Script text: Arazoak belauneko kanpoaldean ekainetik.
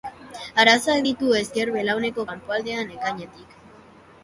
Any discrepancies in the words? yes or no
yes